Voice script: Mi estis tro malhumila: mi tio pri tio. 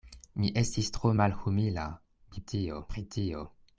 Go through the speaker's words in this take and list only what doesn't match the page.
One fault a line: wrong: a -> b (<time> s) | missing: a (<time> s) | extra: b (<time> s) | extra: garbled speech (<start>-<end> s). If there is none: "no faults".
no faults